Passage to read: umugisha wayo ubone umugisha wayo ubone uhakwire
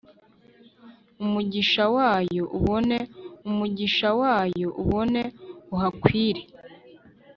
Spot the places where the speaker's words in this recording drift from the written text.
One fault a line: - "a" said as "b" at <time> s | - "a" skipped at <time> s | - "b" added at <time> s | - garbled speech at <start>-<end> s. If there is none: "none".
none